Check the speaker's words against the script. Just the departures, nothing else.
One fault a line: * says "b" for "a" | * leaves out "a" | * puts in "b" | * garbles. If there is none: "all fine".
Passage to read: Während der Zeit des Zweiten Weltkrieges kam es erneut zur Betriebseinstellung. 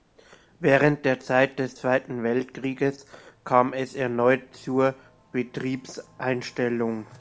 all fine